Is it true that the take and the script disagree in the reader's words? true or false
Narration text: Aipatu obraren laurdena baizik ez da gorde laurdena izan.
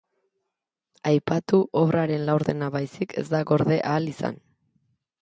true